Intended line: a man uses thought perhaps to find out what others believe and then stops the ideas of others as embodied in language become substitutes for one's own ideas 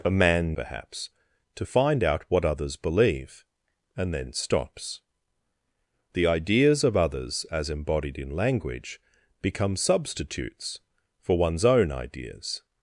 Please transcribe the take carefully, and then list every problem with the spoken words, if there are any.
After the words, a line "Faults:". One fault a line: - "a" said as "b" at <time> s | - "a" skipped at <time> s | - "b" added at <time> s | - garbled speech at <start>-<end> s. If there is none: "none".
a man perhaps to find out what others believe and then stops the ideas of others as embodied in language become substitutes for one's own ideas
Faults:
- "uses thought" skipped at 0.6 s